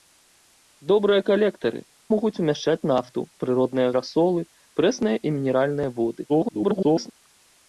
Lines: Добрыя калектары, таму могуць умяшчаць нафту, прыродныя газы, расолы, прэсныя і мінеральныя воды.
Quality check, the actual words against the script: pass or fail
fail